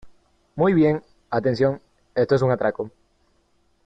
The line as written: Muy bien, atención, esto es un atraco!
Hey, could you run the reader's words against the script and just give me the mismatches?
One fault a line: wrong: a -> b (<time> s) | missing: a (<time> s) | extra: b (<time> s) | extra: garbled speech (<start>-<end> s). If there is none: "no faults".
no faults